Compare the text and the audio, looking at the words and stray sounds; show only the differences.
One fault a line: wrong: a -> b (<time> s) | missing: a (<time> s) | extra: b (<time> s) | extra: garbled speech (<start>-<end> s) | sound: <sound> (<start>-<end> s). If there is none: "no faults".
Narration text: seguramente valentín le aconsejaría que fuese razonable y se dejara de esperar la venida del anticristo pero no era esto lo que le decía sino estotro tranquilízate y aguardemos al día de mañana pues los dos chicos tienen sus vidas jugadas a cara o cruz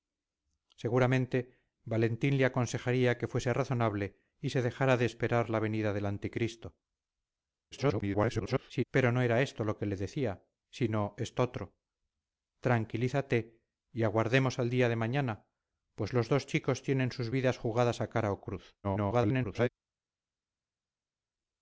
extra: garbled speech (7.7-8.8 s)
extra: garbled speech (18.8-19.7 s)